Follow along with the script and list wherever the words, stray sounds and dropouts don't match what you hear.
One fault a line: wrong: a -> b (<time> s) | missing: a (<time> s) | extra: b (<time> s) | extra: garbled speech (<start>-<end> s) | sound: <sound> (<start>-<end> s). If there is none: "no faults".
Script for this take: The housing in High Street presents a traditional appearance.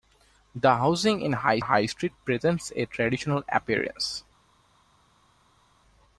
extra: High (1.6 s)